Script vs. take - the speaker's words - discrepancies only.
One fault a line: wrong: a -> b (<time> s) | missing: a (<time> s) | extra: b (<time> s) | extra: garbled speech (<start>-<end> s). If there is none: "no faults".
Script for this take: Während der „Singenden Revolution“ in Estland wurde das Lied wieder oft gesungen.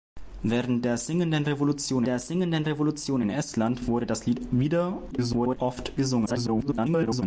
extra: der Singenden Revolution (2.1 s)
extra: garbled speech (5.1-5.6 s)
extra: garbled speech (6.3-7.2 s)